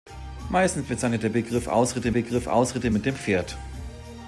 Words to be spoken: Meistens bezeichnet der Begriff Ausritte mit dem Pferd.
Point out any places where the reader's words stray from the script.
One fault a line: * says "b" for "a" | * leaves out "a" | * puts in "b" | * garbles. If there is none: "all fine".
* puts in "Begriff Ausritte"